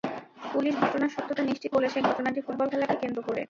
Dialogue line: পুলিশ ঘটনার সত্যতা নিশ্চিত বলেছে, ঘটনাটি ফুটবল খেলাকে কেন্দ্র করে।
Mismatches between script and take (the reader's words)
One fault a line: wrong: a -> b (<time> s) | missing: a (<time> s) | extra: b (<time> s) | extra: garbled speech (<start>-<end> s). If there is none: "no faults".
no faults